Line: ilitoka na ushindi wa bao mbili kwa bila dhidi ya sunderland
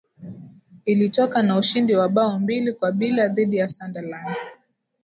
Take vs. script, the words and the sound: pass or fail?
pass